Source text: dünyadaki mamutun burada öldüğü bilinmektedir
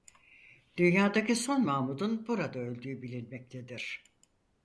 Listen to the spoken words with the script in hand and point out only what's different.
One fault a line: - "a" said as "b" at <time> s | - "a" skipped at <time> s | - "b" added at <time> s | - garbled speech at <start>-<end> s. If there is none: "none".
- "son" added at 1.4 s